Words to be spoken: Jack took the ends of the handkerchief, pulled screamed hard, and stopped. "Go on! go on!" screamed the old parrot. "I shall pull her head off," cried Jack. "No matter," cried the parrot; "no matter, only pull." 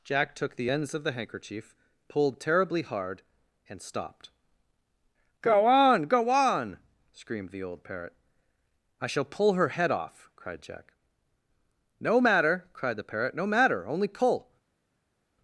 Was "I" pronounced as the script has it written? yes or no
yes